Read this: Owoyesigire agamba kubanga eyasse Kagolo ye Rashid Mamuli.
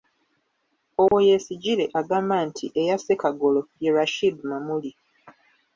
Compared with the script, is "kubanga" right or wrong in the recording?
wrong